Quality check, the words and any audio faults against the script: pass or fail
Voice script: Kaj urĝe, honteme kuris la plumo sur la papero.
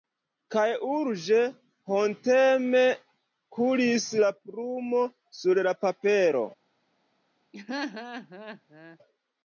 fail